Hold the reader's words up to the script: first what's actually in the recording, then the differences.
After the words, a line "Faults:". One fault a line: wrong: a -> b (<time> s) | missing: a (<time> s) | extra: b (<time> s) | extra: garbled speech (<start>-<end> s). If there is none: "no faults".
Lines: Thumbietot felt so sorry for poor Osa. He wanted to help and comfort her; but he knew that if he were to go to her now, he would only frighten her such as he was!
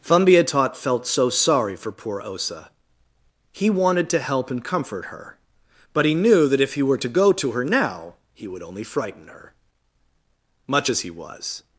Thumbietot felt so sorry for poor Osa. He wanted to help and comfort her; but he knew that if he were to go to her now, he would only frighten her much as he was!
Faults:
wrong: such -> much (10.7 s)